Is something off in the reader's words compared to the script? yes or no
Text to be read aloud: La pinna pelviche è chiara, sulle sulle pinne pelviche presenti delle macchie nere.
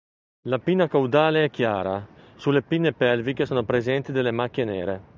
yes